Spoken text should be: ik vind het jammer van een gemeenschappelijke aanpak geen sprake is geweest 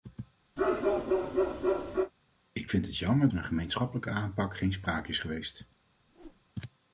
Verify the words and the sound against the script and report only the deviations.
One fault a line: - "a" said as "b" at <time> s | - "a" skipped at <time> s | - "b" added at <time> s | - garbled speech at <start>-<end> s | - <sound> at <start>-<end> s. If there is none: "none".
- bark at 0.6-2.1 s
- whoosh at 6.1-6.4 s